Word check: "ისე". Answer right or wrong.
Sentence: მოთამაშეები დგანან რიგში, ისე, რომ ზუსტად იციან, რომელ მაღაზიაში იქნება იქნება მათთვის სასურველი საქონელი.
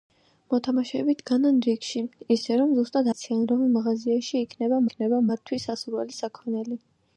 right